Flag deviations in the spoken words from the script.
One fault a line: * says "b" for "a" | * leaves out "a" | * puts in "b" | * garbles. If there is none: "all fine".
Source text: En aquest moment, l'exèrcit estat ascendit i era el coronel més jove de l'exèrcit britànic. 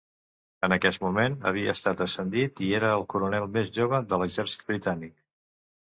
* says "havia" for "l'exèrcit"